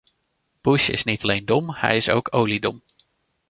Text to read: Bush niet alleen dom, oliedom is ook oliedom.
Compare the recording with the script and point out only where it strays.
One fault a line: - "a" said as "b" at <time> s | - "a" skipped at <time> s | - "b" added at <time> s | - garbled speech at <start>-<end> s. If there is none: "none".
- "is" added at 0.9 s
- "oliedom" said as "hij" at 1.7 s